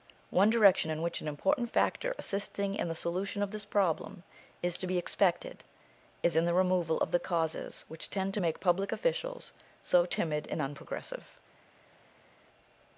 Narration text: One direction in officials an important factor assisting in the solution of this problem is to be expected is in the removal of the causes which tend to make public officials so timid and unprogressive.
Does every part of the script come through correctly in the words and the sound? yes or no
no